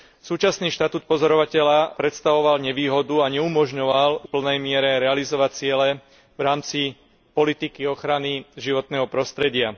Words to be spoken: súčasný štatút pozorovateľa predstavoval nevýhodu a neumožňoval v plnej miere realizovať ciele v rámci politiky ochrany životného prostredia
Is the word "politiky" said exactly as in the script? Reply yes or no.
yes